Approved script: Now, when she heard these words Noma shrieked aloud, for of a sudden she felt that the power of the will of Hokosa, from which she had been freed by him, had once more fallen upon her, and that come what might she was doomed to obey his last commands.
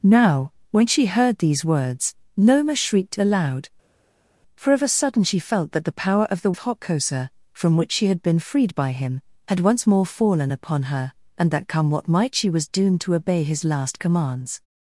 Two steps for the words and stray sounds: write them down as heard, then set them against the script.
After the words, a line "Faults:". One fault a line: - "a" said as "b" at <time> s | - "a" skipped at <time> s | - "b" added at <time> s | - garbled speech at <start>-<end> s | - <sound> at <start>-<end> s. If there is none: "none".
Now, when she heard these words Noma shrieked aloud, for of a sudden she felt that the power of the of Hokosa, from which she had been freed by him, had once more fallen upon her, and that come what might she was doomed to obey his last commands.
Faults:
- "will" skipped at 6.5 s